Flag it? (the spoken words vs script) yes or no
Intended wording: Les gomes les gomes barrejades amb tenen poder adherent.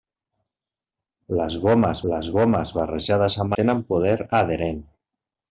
no